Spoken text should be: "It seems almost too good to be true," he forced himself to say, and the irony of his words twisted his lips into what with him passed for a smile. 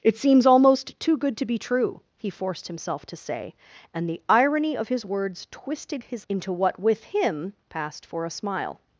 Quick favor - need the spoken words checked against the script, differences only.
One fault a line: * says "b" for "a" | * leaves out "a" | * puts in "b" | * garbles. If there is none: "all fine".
* leaves out "lips"